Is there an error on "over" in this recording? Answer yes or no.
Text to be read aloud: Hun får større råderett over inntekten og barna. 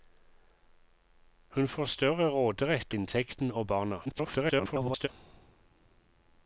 yes